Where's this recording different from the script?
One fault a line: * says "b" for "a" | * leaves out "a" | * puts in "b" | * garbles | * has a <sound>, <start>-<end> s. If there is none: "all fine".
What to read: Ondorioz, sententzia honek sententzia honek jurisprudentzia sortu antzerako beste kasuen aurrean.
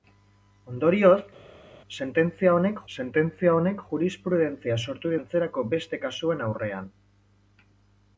all fine